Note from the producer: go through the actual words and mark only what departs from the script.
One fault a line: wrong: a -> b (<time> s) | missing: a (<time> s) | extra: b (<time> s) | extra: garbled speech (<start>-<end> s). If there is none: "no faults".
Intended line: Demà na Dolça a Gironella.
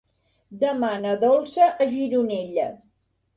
no faults